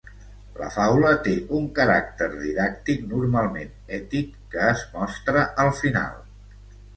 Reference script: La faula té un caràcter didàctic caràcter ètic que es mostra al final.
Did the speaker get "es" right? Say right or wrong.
right